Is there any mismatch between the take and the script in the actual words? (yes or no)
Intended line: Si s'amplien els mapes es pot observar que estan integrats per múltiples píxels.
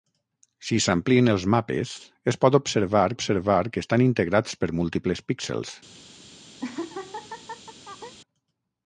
yes